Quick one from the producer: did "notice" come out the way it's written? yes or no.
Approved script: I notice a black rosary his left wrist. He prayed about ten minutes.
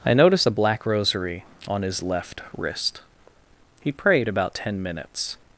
no